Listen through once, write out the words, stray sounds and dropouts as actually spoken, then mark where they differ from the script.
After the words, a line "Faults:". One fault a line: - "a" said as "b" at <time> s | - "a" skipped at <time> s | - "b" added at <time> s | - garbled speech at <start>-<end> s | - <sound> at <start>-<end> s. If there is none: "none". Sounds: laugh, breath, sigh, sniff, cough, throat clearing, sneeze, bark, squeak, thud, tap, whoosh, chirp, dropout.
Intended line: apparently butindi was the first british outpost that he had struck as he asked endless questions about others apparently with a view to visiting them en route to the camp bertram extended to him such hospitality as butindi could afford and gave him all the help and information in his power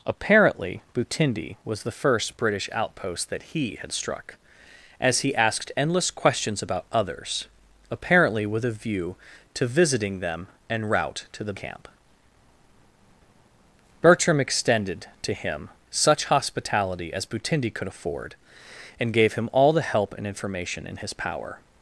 apparently butindi was the first british outpost that he had struck as he asked endless questions about others apparently with a view to visiting them en route to the camp bertram extended to him such hospitality as butindi could afford and gave him all the help and information in his power
Faults:
none